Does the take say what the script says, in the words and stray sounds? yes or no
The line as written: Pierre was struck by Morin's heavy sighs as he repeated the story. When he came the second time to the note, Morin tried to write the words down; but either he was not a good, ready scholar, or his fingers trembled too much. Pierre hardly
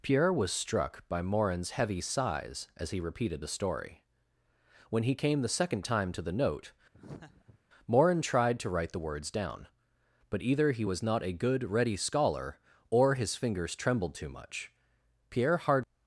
no